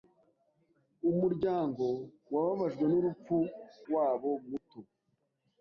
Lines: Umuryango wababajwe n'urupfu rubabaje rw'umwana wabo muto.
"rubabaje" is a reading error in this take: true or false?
true